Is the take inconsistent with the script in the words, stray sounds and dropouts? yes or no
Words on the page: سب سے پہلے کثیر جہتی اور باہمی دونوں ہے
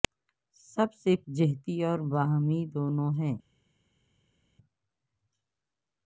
yes